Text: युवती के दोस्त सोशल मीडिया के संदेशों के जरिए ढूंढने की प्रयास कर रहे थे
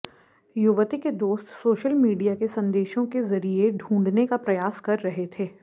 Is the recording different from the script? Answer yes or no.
yes